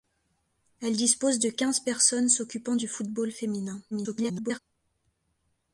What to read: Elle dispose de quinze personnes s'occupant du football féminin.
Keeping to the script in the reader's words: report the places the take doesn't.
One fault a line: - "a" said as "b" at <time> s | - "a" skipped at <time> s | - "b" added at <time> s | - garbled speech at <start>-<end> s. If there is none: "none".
- garbled speech at 3.9-4.6 s